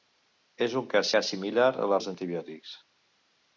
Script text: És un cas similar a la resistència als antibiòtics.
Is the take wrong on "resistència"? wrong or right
wrong